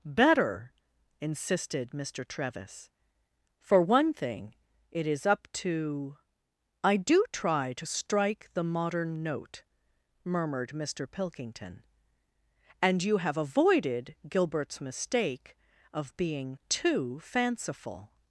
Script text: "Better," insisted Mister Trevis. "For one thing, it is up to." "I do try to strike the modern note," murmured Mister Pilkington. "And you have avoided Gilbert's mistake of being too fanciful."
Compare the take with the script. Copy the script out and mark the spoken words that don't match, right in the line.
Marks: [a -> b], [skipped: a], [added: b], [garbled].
"Better," insisted Mister Trevis. "For one thing, it is up to." "I do try to strike the modern note," murmured Mister Pilkington. "And you have avoided Gilbert's mistake of being too fanciful."